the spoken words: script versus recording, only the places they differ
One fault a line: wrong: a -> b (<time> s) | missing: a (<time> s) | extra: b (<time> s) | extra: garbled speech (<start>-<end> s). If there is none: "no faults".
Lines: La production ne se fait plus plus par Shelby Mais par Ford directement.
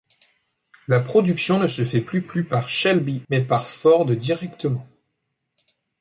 no faults